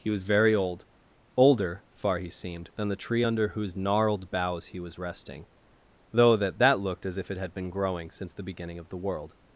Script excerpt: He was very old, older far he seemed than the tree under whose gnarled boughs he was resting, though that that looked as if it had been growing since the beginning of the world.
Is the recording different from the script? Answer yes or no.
no